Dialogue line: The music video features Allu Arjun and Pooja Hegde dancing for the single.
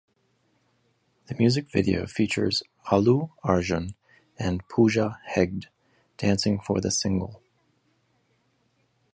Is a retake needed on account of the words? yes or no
no